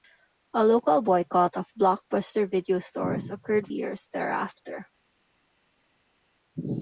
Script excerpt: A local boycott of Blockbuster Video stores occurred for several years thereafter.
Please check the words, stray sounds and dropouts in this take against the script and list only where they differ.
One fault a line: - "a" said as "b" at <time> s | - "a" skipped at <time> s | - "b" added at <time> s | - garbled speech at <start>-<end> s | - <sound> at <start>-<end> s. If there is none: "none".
- "for several" skipped at 3.7 s